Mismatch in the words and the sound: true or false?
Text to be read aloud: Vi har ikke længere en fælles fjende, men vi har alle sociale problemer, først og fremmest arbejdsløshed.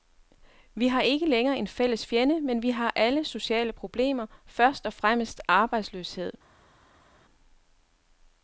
false